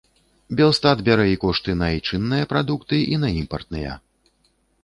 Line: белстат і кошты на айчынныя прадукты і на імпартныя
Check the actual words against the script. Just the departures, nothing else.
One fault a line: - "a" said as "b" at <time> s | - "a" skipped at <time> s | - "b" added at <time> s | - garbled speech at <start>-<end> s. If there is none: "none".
- "бярэ" added at 1.1 s